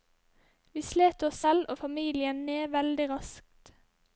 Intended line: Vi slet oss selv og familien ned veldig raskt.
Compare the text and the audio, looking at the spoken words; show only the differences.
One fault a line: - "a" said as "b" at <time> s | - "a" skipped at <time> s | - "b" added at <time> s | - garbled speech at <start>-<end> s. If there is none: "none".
none